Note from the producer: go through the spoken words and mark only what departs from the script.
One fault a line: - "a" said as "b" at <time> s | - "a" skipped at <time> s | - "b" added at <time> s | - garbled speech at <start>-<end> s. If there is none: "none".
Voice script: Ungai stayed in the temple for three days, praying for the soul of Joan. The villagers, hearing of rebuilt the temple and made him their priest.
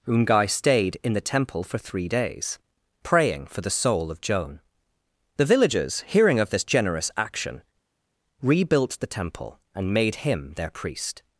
- "this generous action" added at 6.5 s